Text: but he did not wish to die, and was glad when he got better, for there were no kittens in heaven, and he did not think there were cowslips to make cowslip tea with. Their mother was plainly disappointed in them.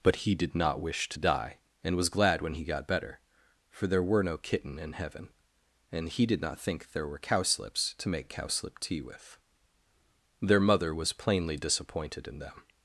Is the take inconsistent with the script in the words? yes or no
yes